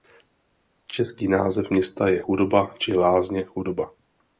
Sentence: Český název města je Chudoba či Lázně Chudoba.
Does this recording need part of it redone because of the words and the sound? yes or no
no